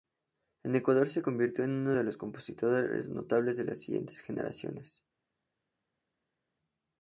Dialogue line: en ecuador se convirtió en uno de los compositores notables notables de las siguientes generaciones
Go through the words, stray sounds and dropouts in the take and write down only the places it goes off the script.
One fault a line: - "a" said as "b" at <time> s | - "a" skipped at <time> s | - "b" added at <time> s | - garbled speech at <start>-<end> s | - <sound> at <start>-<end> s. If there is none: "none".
- "notables" skipped at 3.6 s